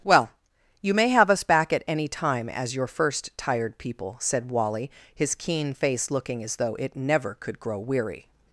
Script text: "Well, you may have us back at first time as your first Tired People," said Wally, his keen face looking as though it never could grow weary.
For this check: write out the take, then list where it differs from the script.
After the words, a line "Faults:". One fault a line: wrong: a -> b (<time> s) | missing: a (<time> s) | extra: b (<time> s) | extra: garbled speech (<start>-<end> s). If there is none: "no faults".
"Well, you may have us back at any time as your first Tired People," said Wally, his keen face looking as though it never could grow weary.
Faults:
wrong: first -> any (1.9 s)